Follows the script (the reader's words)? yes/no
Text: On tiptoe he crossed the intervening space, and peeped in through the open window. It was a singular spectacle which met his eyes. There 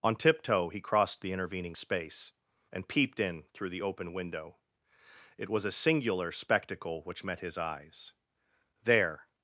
yes